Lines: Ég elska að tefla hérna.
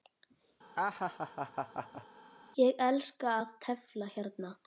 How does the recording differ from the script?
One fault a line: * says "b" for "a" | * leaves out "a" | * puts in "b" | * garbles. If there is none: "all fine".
all fine